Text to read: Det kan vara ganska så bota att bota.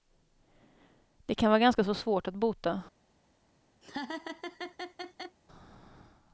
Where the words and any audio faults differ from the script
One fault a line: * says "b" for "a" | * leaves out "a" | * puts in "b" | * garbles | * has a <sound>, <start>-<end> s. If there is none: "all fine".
* says "svårt" for "bota"
* has a laugh, 3.8-5.4 s